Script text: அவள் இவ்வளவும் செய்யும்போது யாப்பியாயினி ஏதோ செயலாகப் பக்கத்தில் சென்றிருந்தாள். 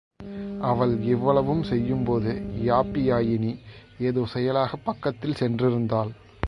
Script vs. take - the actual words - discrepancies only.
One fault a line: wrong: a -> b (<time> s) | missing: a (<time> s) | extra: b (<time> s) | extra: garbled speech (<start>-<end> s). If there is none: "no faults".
no faults